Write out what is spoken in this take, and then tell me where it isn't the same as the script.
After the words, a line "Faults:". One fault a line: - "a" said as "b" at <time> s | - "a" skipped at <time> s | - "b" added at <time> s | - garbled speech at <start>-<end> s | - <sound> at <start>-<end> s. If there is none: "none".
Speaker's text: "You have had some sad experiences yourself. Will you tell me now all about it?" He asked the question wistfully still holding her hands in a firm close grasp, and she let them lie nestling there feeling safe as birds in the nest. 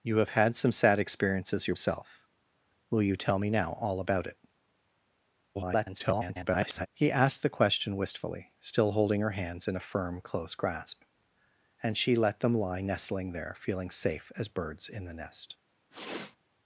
"You have had some sad experiences yourself. Will you tell me now all about it?" [garbled] He asked the question wistfully still holding her hands in a firm close grasp, and she let them lie nestling there feeling safe as birds in the nest.
Faults:
- garbled speech at 5.5-6.9 s
- sniff at 15.9-16.4 s